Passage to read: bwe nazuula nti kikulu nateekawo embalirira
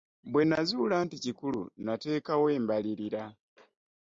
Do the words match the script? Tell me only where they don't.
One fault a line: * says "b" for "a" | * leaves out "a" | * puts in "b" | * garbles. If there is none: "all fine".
all fine